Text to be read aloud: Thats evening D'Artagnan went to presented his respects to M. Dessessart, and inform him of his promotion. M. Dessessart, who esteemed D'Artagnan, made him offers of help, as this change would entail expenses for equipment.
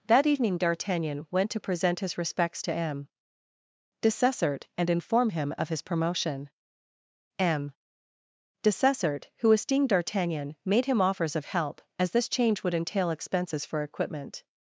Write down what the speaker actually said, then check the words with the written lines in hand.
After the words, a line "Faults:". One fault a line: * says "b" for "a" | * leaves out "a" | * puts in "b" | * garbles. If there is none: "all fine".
That evening D'Artagnan went to present his respects to M. Dessessart, and inform him of his promotion. M. Dessessart, who esteemed D'Artagnan, made him offers of help, as this change would entail expenses for equipment.
Faults:
* says "That" for "Thats"
* says "present" for "presented"